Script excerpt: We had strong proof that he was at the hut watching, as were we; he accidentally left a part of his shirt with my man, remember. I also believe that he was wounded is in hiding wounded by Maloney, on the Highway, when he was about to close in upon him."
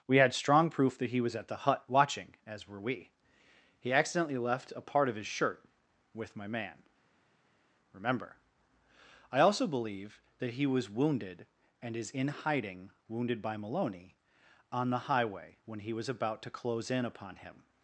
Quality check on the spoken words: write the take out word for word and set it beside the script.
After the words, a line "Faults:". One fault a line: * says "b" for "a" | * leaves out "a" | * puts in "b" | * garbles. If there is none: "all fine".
We had strong proof that he was at the hut watching, as were we; he accidentally left a part of his shirt with my man, remember. I also believe that he was wounded and is in hiding wounded by Maloney, on the Highway, when he was about to close in upon him."
Faults:
* puts in "and"